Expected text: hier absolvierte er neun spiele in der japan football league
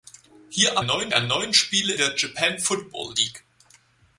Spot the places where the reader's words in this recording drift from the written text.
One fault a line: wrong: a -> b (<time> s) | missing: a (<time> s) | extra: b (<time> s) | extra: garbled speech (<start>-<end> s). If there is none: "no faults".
wrong: absolvierte -> neun (0.8 s)
missing: in (1.9 s)